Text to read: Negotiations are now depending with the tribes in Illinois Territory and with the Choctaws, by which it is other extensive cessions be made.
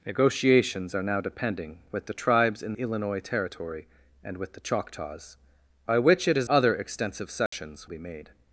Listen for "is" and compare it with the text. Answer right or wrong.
right